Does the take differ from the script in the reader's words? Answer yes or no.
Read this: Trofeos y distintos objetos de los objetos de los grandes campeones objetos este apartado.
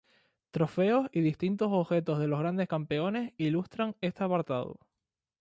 yes